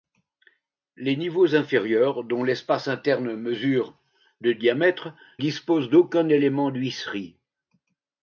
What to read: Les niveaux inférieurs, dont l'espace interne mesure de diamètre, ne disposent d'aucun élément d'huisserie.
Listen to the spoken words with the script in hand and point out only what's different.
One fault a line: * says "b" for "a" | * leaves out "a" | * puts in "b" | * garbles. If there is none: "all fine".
* leaves out "ne"